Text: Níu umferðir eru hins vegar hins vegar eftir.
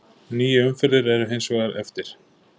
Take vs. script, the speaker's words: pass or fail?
fail